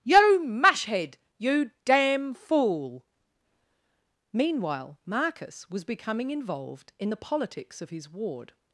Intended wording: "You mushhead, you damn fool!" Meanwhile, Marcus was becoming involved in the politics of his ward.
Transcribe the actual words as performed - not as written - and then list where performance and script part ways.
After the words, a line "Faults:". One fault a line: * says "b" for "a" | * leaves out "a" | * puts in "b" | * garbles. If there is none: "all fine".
"You mushhead, you damn fool!" Meanwhile, Marcus was becoming involved in the politics of his ward.
Faults:
all fine